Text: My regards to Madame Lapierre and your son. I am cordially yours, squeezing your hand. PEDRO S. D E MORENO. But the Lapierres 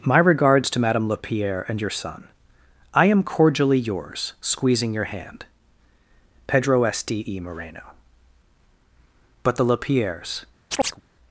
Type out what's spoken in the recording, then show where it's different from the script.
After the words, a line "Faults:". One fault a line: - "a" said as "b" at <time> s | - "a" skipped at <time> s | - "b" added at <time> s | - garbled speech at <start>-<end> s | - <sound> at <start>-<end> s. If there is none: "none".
My regards to Madame Lapierre and your son. I am cordially yours, squeezing your hand. PEDRO S. D E MORENO. But the Lapierres
Faults:
- chirp at 10.7-11.0 s